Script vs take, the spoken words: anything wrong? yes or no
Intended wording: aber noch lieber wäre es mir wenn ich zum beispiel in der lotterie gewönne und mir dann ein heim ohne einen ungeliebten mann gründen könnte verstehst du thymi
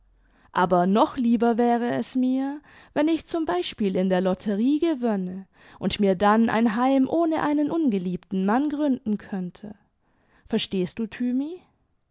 no